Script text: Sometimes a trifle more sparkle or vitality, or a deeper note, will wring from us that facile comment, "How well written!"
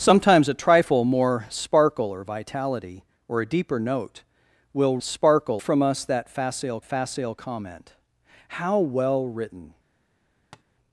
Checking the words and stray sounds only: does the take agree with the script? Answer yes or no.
no